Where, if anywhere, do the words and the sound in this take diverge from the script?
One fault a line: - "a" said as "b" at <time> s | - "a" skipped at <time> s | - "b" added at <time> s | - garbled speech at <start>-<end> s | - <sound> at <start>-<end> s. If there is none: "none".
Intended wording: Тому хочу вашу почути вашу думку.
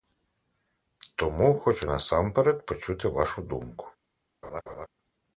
- "вашу" said as "насамперед" at 1.9 s
- laugh at 4.4-4.9 s